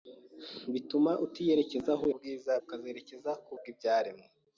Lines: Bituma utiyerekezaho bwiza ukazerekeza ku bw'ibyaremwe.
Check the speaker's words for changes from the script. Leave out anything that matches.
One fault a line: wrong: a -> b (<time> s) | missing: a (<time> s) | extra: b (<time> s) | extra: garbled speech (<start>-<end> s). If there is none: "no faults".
no faults